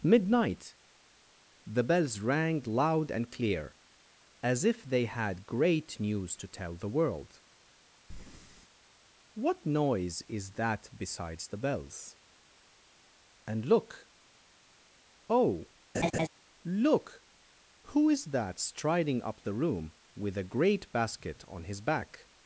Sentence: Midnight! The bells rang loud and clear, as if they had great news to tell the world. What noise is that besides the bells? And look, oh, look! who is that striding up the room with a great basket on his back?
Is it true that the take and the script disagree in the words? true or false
false